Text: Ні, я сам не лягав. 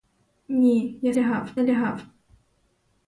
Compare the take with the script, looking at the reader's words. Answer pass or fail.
fail